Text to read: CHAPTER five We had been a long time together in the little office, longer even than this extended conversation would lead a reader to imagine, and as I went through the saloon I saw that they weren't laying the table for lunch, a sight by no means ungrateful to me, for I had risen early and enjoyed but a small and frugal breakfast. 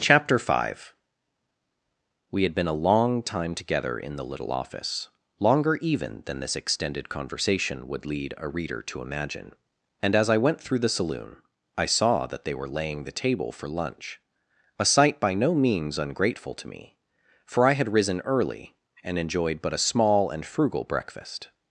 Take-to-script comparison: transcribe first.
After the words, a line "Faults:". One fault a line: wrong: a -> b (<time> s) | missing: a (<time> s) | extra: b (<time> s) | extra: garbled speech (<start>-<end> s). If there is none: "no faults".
CHAPTER five We had been a long time together in the little office, longer even than this extended conversation would lead a reader to imagine, and as I went through the saloon I saw that they were laying the table for lunch, a sight by no means ungrateful to me, for I had risen early and enjoyed but a small and frugal breakfast.
Faults:
wrong: weren't -> were (12.6 s)